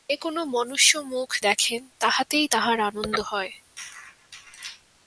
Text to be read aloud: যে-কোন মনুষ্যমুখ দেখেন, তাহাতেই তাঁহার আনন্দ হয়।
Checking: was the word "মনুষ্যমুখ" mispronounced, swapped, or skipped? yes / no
no